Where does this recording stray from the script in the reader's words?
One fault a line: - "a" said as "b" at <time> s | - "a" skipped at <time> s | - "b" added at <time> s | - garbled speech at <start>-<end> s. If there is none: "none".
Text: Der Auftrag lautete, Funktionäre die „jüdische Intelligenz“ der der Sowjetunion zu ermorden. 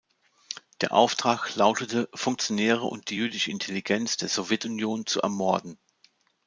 - "und" added at 2.9 s
- "der" skipped at 4.3 s